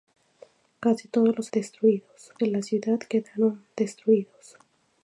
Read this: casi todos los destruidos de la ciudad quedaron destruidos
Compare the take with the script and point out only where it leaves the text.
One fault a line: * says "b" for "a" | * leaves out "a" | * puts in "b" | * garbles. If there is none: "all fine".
all fine